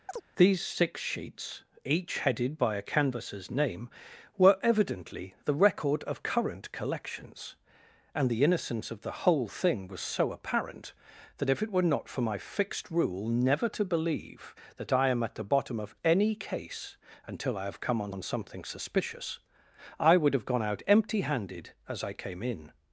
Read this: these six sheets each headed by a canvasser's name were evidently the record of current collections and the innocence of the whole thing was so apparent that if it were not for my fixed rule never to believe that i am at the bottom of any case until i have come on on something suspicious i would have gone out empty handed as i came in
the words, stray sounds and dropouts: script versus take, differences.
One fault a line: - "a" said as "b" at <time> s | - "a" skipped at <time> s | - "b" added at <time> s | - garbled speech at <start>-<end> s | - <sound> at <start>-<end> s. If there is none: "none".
- chirp at 0.1-0.2 s